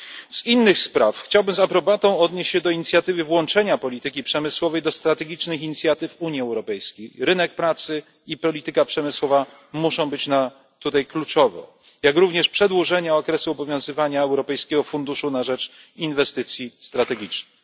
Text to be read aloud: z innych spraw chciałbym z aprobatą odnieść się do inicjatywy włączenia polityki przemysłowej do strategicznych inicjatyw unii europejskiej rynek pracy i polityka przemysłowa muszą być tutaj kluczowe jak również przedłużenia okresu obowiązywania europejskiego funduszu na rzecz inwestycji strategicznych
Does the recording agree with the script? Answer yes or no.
yes